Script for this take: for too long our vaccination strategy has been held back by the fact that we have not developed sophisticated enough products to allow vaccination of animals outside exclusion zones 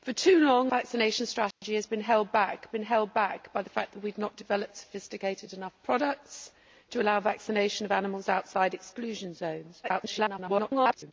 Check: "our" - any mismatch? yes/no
yes